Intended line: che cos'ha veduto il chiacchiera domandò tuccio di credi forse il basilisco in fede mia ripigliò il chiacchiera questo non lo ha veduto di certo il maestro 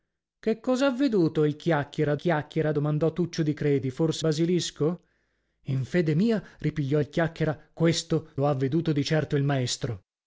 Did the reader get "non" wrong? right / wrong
wrong